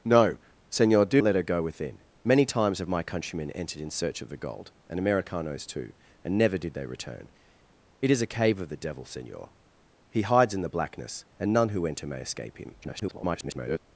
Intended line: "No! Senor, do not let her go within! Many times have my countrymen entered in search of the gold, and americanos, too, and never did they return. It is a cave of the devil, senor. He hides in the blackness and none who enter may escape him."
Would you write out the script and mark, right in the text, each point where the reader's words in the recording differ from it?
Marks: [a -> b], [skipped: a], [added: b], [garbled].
"No! Senor, do [skipped: not] let her go within! Many times have my countrymen entered in search of the gold, and americanos, too, and never did they return. It is a cave of the devil, senor. He hides in the blackness and none who enter may escape him." [garbled]